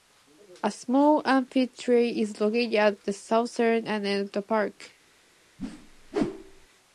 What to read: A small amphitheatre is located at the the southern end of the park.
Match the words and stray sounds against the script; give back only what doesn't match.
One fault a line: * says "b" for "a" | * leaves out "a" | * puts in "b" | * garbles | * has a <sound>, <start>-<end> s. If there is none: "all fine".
* leaves out "the"
* has a whoosh, 5.6-6.7 s